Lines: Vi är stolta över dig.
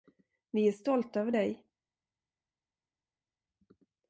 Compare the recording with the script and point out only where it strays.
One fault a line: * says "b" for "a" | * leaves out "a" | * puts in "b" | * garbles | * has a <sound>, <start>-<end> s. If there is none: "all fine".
all fine